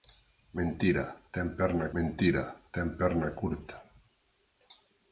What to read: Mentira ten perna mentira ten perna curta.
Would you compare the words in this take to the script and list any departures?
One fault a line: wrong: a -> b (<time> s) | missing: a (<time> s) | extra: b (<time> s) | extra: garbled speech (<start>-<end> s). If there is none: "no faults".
no faults